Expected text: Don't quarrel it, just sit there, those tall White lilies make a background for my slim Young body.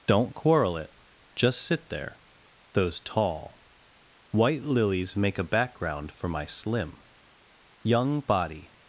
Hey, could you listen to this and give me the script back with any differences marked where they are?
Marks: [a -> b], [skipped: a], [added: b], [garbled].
Don't quarrel it, just sit there, those tall White lilies make a background for my slim Young body.